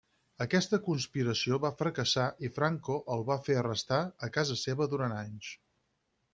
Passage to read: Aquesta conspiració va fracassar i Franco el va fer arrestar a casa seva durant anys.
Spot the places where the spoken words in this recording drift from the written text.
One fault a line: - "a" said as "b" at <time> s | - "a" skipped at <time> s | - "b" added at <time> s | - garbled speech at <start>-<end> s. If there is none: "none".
none